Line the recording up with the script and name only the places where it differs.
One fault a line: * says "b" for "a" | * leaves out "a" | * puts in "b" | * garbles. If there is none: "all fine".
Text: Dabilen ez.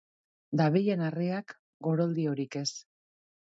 * puts in "harriak goroldiorik"